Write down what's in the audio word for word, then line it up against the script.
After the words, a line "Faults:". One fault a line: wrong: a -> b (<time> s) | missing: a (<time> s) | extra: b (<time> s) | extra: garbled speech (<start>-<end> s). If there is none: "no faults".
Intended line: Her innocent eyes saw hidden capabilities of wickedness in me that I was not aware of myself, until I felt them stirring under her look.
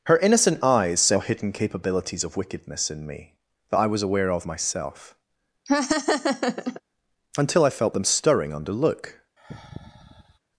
Her innocent eyes saw hidden capabilities of wickedness in me that I was aware of myself, until I felt them stirring under look.
Faults:
missing: not (4.0 s)
missing: her (8.7 s)